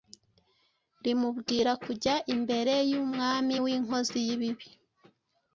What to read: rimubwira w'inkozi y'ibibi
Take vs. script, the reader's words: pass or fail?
fail